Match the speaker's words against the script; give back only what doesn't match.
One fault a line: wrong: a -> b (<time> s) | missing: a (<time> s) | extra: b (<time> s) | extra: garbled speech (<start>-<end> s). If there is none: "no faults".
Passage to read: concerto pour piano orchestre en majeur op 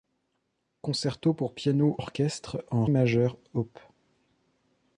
no faults